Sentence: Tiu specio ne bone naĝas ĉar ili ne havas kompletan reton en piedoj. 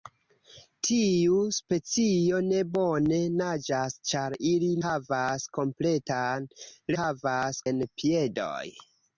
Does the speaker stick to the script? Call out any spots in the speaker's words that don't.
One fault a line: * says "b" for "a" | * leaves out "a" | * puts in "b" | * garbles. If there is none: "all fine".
* leaves out "ne"
* says "havas" for "reton"